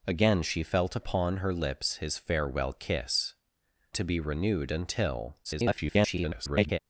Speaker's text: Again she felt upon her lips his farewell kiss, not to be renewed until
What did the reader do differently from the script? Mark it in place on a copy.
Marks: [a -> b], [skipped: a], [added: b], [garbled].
Again she felt upon her lips his farewell kiss, [skipped: not] to be renewed until [garbled]